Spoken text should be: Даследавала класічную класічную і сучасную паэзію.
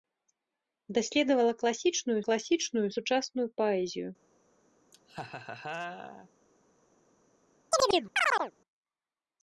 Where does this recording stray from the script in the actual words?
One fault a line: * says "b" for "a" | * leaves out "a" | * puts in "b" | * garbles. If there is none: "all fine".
all fine